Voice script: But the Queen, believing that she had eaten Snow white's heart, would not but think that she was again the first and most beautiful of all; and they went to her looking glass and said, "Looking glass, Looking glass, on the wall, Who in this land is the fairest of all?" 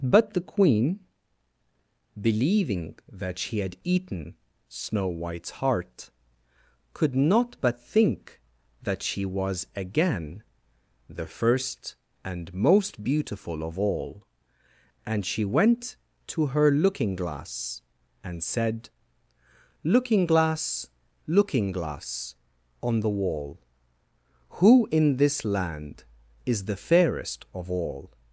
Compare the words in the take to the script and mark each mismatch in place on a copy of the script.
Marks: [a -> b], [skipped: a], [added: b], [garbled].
But the Queen, believing that she had eaten Snow white's heart, [would -> could] not but think that she was again the first and most beautiful of all; and [they -> she] went to her looking glass and said, "Looking glass, Looking glass, on the wall, Who in this land is the fairest of all?"